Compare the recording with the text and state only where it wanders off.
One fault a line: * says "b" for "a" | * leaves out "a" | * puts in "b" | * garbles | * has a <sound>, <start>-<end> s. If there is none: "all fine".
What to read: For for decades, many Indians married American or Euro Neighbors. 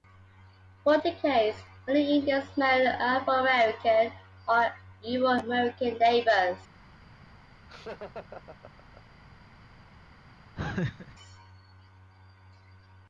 * leaves out "for"
* puts in "Afro"
* puts in "American"
* has a laugh, 7.7-9.2 s
* has a laugh, 10.6-11.2 s